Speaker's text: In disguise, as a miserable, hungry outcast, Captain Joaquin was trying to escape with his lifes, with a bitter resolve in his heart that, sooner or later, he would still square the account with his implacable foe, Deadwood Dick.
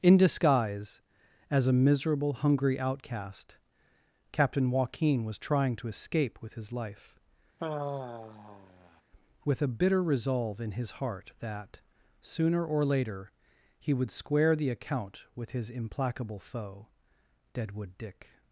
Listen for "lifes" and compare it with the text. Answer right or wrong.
wrong